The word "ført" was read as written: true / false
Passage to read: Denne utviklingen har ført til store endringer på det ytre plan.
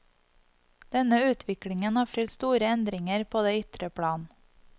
false